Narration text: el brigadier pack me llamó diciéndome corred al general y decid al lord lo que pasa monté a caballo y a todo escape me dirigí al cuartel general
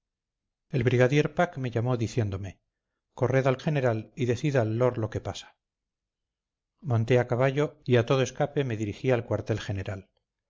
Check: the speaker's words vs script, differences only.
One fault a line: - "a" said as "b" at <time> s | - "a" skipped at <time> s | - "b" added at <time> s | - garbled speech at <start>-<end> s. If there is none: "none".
none